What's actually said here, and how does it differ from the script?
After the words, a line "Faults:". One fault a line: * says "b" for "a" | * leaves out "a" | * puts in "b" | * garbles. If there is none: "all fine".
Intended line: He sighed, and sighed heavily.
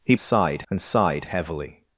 He sighed, and sighed heavily.
Faults:
all fine